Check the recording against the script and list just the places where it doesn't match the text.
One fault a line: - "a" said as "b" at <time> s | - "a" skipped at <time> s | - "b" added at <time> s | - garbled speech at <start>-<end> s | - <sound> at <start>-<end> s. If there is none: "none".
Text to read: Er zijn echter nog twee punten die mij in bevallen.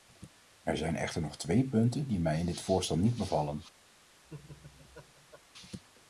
- "dit voorstel niet" added at 2.5 s
- laugh at 4.2-5.4 s